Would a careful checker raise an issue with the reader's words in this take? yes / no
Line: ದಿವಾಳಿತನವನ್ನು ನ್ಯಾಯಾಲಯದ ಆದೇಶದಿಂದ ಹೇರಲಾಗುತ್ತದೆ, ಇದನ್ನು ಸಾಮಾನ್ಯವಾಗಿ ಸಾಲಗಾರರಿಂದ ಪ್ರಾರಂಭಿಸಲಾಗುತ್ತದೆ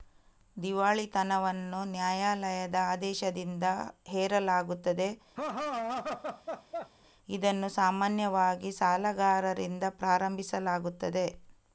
no